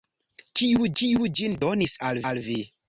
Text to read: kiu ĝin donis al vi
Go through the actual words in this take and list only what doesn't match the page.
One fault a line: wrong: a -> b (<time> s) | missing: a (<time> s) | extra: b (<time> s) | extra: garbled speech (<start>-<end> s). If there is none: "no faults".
extra: kiu (1.0 s)
extra: al (2.3 s)